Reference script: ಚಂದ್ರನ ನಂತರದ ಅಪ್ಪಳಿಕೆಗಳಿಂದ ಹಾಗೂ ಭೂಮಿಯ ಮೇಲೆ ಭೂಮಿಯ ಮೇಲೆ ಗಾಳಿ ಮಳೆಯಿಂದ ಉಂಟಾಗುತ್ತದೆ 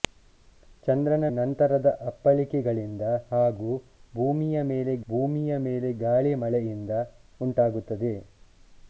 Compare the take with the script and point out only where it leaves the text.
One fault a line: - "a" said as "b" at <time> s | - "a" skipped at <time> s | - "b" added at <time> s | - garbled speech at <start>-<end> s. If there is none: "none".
none